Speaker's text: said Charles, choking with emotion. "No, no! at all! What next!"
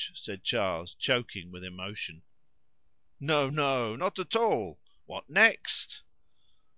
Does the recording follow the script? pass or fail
fail